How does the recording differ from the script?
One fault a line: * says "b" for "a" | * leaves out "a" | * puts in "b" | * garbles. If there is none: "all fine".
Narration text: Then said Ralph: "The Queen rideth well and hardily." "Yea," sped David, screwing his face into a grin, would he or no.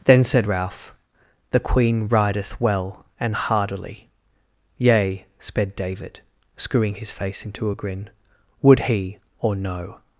all fine